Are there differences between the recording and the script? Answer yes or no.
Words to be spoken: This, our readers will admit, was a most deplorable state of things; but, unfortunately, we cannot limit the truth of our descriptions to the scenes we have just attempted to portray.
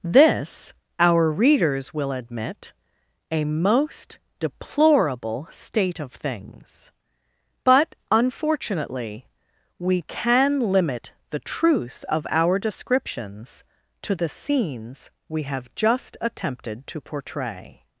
yes